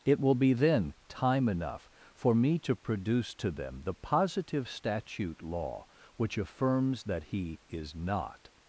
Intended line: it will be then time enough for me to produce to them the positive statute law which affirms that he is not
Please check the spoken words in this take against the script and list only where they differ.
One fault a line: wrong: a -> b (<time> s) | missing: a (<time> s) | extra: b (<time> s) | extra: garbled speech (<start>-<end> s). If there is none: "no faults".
no faults